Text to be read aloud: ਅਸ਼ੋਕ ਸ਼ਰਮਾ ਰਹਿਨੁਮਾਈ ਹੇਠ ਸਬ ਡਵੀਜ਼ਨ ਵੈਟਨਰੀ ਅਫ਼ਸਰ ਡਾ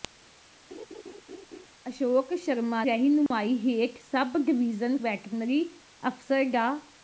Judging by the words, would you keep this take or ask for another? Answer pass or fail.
pass